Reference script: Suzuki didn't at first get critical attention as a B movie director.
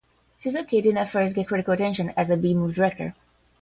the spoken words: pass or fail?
pass